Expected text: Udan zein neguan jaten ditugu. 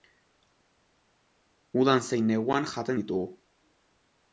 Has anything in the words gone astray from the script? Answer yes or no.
no